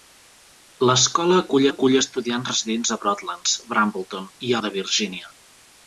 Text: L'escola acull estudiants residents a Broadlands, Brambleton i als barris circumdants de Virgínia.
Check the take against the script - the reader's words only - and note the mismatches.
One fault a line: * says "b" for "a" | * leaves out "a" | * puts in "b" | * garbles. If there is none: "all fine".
* puts in "acull"
* leaves out "als barris circumdants"